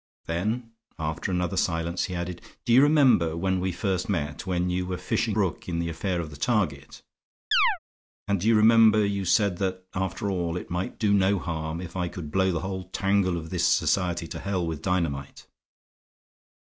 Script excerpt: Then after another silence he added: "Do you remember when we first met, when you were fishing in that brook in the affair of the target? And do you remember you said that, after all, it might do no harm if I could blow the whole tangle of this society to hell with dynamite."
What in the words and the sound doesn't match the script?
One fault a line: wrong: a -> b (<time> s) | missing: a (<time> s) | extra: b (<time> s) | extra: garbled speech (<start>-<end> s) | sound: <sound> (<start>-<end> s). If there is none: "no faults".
missing: in that (5.4 s)
sound: chirp (7.5-7.8 s)